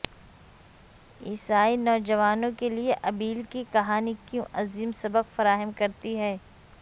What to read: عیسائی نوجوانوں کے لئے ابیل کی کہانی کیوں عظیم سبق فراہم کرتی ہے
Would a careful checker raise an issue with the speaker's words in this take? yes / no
no